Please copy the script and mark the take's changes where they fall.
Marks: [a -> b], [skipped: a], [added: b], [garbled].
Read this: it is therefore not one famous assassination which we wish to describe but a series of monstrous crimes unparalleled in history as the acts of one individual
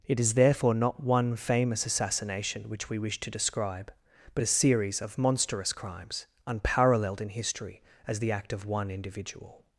it is therefore not one famous assassination which we wish to describe but a series of monstrous crimes unparalleled in history as the [acts -> act] of one individual